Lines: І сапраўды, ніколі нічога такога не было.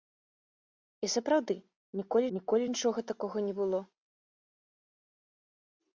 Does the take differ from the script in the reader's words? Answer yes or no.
yes